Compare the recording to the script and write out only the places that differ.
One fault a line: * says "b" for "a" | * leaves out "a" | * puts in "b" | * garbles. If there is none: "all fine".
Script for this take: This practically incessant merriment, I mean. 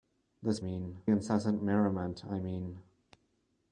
* says "mean" for "practically"